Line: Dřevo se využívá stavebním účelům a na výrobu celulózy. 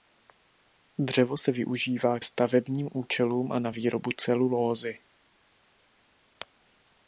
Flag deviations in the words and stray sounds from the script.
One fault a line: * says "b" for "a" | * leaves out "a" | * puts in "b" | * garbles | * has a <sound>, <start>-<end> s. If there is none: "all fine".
all fine